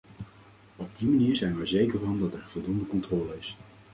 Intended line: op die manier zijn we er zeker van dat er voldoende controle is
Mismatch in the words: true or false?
false